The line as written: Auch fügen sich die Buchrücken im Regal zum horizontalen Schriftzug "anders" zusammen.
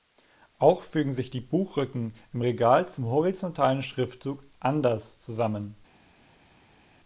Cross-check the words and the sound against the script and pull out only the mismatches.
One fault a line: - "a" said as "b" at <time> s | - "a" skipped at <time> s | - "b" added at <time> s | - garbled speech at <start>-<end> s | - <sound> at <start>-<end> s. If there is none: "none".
none